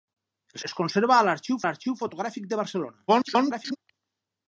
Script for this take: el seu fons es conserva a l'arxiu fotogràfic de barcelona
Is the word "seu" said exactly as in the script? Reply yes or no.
no